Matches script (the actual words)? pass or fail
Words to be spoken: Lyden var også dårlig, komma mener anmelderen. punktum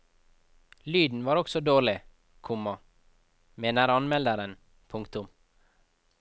pass